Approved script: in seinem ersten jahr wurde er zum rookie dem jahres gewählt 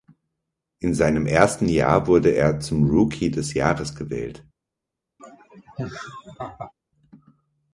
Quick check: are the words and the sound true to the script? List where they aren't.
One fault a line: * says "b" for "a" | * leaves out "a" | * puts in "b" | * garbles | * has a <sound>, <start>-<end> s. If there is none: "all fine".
* says "des" for "dem"
* has a laugh, 5.2-6.7 s